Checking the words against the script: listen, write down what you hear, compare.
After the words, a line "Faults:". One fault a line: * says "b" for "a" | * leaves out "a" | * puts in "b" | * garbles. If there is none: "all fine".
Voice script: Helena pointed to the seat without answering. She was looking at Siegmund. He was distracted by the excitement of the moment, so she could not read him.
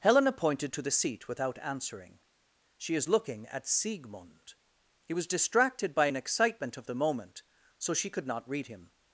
Helena pointed to the seat without answering. She is looking at Siegmund. He was distracted by an excitement of the moment, so she could not read him.
Faults:
* says "is" for "was"
* says "an" for "the"